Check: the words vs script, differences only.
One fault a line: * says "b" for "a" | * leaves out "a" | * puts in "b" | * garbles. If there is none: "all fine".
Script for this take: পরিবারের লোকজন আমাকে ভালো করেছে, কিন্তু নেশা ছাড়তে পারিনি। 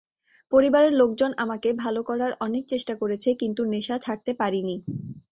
* puts in "করার অনেক চেষ্টা"